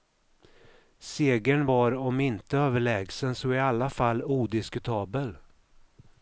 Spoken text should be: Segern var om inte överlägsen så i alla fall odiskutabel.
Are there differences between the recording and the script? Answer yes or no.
no